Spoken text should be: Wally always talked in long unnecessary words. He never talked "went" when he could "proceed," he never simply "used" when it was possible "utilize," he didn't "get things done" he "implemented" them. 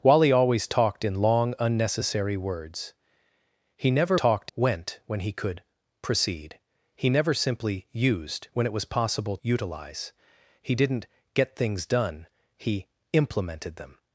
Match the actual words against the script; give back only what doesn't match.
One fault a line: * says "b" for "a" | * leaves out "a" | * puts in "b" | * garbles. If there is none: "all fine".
all fine